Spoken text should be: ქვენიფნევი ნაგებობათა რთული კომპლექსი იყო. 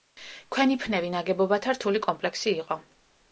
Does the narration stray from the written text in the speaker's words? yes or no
no